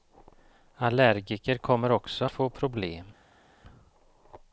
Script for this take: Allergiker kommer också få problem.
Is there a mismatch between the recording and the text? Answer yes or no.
no